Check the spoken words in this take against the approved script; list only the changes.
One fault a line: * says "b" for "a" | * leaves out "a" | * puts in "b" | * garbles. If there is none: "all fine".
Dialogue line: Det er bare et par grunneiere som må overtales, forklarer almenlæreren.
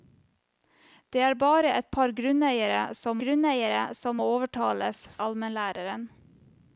* puts in "grunneiere som"
* leaves out "forklarer"